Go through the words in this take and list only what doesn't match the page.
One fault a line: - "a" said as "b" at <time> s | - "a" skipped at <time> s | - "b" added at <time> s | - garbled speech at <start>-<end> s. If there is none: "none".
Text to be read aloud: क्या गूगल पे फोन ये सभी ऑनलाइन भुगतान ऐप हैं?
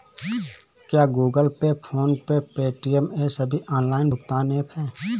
- "पे पेटीएम" added at 2.3 s